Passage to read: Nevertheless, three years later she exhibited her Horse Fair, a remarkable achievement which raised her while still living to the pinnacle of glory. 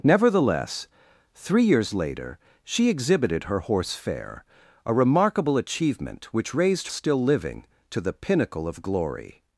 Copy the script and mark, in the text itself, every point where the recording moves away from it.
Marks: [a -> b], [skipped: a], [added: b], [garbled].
Nevertheless, three years later she exhibited her Horse Fair, a remarkable achievement which raised [skipped: her while] still living to the pinnacle of glory.